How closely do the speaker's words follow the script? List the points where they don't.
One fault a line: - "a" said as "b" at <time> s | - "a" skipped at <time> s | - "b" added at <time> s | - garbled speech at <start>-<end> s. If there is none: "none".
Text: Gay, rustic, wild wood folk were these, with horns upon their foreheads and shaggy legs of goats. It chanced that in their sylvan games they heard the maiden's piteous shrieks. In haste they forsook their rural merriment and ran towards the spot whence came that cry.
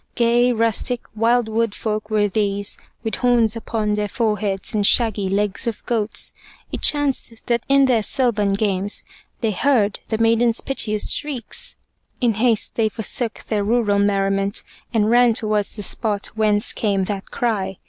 none